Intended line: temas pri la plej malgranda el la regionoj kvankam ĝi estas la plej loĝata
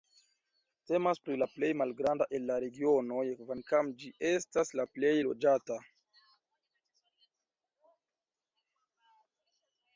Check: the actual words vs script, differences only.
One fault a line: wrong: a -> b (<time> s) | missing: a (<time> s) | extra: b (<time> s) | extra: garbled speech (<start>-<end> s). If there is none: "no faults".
no faults